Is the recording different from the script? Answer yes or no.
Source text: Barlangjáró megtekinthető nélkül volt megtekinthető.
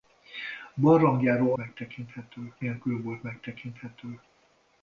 no